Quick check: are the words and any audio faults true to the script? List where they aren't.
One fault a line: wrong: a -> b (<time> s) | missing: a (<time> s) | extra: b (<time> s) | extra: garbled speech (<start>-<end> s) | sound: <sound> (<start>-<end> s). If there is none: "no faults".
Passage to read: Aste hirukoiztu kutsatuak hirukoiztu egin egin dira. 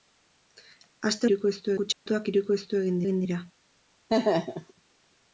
sound: dropout (1.9-2.1 s)
sound: laugh (4.1-4.7 s)